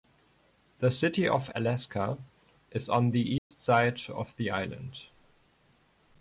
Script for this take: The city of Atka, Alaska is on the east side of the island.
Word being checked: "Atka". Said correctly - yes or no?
no